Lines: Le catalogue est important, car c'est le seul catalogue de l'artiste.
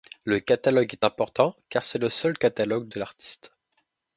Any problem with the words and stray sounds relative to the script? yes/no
no